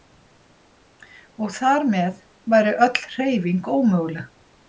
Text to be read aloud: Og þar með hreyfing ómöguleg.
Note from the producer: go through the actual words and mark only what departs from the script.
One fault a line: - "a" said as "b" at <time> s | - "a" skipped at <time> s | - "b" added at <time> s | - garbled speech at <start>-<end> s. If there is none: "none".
- "væri öll" added at 2.5 s